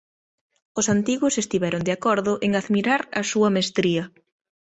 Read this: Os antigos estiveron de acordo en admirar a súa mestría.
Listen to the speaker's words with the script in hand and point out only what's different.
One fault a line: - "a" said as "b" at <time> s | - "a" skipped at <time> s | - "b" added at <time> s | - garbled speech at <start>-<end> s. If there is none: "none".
none